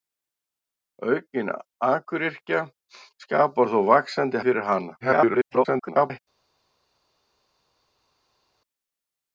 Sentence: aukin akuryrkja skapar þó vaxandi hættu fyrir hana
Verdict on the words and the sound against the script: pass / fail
fail